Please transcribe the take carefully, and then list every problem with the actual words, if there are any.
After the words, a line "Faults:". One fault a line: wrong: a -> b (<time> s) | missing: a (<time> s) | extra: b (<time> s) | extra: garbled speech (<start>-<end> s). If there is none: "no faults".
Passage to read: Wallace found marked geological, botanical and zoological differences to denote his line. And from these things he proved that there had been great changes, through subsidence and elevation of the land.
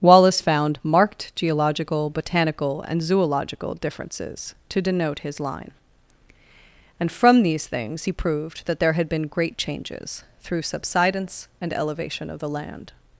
Wallace found marked geological, botanical and zoological differences to denote his line. And from these things he proved that there had been great changes, through subsidence and elevation of the land.
Faults:
no faults